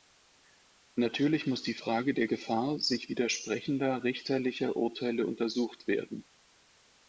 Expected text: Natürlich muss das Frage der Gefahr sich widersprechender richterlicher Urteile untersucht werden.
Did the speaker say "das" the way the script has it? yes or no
no